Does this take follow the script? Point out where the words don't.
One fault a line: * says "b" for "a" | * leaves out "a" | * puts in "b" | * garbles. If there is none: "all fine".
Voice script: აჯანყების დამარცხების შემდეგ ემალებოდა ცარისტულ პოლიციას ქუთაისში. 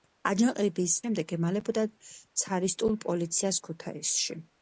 * leaves out "დამარცხების"